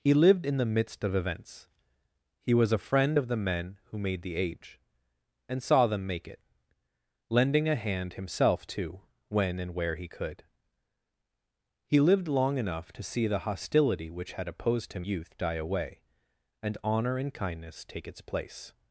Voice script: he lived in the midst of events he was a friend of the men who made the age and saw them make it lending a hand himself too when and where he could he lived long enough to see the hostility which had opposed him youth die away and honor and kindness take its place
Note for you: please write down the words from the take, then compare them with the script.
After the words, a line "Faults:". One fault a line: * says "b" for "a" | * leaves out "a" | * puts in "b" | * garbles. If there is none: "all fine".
he lived in the midst of events he was a friend of the men who made the age and saw them make it lending a hand himself too when and where he could he lived long enough to see the hostility which had opposed him youth die away and honor and kindness take its place
Faults:
all fine